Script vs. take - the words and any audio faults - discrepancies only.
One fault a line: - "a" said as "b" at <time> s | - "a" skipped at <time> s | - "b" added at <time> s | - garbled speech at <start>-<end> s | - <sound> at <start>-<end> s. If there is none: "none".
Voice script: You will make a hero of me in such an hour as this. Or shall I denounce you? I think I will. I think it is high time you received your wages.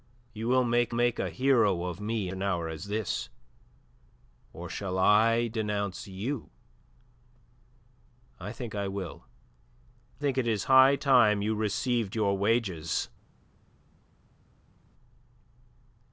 - "make" added at 0.9 s
- "in such" skipped at 2.3 s
- "I" skipped at 9.3 s